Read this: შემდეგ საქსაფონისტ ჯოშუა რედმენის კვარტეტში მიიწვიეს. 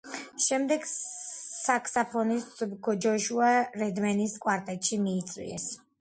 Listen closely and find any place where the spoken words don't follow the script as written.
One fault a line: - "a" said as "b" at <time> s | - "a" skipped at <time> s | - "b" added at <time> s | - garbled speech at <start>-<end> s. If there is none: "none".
none